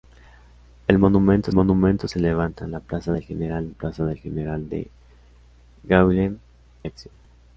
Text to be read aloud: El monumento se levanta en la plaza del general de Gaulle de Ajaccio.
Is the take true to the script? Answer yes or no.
no